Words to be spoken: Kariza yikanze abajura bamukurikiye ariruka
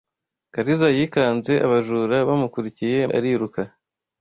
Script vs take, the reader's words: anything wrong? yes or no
no